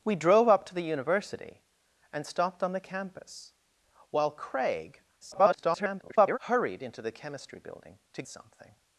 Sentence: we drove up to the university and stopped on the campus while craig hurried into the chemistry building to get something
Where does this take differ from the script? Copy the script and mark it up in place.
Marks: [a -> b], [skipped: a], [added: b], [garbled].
we drove up to the university and stopped on the campus while craig [garbled] hurried into the chemistry building to [skipped: get] something